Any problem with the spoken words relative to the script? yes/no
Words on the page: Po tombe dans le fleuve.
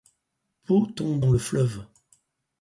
no